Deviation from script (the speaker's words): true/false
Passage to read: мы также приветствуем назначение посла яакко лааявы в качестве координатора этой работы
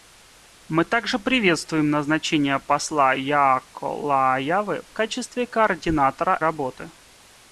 true